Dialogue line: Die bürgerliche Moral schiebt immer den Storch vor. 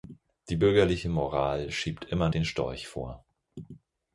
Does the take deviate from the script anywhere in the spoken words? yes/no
no